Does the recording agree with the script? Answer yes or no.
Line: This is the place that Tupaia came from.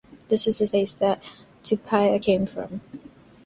yes